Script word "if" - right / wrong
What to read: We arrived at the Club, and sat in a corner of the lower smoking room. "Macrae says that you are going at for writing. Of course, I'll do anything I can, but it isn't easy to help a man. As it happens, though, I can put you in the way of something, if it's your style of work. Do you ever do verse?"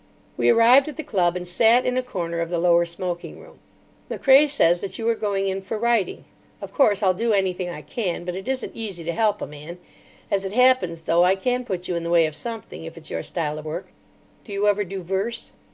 right